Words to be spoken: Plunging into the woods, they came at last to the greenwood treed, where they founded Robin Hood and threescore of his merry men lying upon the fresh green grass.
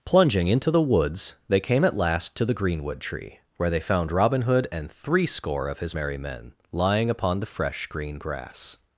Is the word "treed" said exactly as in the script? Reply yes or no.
no